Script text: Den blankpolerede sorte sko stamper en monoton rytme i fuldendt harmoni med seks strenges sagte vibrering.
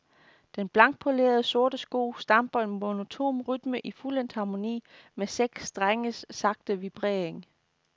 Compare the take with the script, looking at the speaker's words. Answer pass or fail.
pass